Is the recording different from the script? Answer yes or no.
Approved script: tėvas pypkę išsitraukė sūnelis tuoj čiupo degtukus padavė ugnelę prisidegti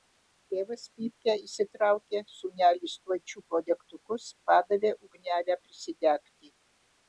no